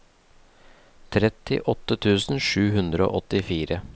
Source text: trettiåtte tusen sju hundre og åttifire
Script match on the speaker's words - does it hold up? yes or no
yes